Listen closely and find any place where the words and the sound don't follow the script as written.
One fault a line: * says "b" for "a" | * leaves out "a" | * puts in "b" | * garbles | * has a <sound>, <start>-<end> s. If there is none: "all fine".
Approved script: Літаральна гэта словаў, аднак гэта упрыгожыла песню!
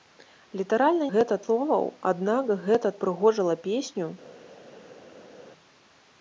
all fine